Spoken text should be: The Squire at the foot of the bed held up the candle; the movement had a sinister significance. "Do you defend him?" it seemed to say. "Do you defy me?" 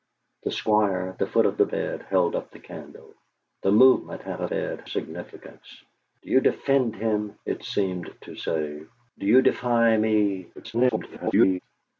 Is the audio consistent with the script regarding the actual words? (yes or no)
no